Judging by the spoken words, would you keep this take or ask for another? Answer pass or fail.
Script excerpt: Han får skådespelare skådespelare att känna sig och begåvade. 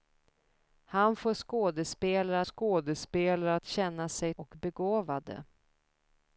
pass